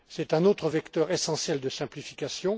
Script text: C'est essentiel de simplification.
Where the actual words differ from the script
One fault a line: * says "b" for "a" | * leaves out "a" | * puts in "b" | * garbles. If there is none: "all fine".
* puts in "un autre vecteur"